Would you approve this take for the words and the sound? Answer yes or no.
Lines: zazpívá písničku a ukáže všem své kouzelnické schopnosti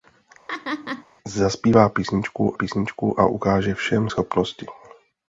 no